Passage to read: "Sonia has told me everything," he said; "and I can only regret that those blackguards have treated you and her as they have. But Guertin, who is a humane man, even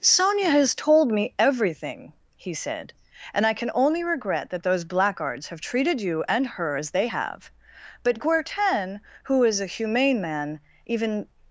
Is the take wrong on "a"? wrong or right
right